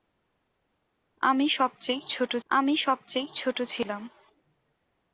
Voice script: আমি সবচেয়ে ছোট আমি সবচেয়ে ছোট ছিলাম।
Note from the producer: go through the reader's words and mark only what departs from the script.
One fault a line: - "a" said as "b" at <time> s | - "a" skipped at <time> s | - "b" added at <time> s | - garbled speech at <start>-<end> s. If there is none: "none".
none